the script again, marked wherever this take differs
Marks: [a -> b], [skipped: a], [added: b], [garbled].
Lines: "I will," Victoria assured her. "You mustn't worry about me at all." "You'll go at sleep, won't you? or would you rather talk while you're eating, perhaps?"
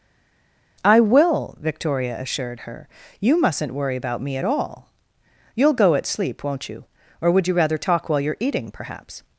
"I will," Victoria assured her. "You mustn't worry about me at all." "You'll go at sleep, won't you? or would you rather talk while you're eating, perhaps?"